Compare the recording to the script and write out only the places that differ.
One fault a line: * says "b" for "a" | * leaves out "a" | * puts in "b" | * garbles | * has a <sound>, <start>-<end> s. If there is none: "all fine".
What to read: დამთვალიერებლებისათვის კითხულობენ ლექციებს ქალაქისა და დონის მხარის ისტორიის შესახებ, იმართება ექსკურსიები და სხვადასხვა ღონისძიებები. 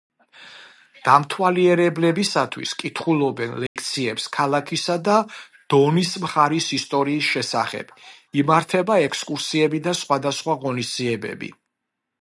* has a dropout, 3.7-3.8 s